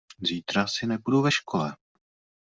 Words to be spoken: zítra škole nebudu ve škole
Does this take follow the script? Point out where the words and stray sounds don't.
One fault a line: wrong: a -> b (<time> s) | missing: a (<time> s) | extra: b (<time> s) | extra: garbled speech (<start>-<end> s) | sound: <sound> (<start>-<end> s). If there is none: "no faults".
wrong: škole -> asi (0.6 s)